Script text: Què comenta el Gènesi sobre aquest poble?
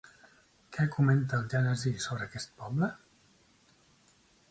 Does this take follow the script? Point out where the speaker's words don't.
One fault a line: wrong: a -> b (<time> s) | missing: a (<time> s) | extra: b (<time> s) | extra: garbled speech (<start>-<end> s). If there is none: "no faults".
no faults